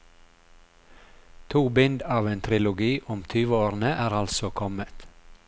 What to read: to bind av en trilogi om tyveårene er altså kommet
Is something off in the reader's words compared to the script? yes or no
no